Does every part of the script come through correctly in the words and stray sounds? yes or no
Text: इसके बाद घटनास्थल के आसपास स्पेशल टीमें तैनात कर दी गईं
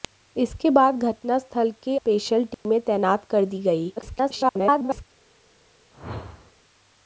no